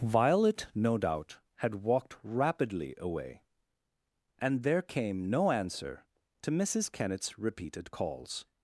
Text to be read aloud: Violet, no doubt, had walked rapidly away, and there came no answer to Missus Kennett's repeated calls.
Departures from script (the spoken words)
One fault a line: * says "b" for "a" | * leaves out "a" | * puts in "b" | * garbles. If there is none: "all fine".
all fine